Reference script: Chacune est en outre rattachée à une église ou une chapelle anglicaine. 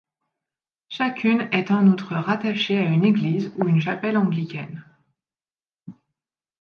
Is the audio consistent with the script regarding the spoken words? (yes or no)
yes